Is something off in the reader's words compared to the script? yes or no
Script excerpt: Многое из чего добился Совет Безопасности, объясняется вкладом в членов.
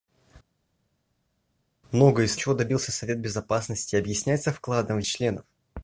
no